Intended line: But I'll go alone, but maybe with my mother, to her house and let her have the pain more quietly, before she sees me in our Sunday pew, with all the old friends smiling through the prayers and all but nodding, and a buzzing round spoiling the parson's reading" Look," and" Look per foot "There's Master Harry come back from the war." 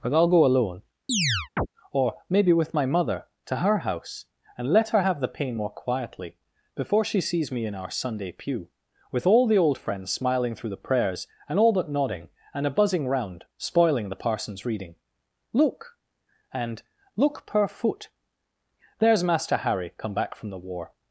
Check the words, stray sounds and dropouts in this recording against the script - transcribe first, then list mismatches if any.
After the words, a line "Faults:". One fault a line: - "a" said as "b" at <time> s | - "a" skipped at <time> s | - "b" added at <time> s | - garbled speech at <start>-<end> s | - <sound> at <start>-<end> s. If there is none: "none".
But I'll go alone, or maybe with my mother, to her house and let her have the pain more quietly, before she sees me in our Sunday pew, with all the old friends smiling through the prayers and all but nodding, and a buzzing round spoiling the parson's reading" Look," and" Look per foot "There's Master Harry come back from the war."
Faults:
- chirp at 1.1-1.7 s
- "but" said as "or" at 1.9 s